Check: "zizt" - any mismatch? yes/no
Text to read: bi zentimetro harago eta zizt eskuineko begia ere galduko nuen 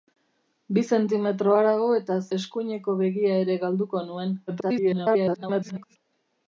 yes